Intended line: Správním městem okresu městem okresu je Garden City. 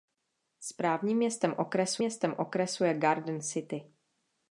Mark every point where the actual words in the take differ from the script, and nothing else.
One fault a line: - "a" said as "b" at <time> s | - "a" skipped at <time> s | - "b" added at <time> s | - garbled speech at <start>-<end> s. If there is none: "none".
none